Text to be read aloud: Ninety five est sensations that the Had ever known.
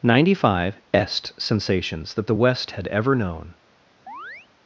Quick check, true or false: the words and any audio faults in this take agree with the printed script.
false